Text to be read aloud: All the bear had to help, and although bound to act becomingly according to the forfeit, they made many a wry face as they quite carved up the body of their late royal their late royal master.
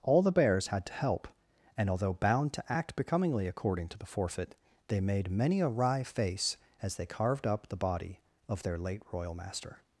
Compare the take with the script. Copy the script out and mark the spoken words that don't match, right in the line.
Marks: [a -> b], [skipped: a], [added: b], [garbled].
All the [bear -> bears] had to help, and although bound to act becomingly according to the forfeit, they made many a wry face as they [skipped: quite] carved up the body of their late royal [skipped: their late royal] master.